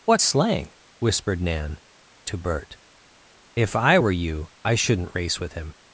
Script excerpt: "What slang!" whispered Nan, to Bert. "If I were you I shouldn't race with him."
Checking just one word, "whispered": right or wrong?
right